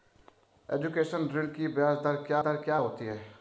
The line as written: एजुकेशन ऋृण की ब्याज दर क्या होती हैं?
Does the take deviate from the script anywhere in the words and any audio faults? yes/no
yes